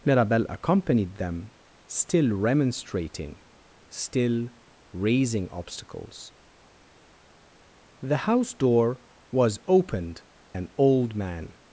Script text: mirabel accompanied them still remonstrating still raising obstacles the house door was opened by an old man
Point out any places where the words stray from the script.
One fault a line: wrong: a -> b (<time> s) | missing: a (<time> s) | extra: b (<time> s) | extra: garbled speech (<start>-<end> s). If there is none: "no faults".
missing: by (10.2 s)